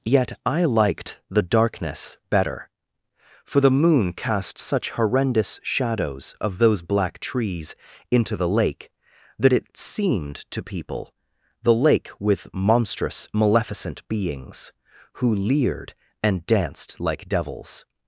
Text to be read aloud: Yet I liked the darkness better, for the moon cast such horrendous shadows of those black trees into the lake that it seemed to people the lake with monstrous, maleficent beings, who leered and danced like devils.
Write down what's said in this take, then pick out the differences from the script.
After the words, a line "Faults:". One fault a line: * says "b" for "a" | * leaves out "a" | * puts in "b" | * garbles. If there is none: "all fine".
Yet I liked the darkness better, for the moon cast such horrendous shadows of those black trees into the lake that it seemed to people the lake with monstrous, maleficent beings, who leered and danced like devils.
Faults:
all fine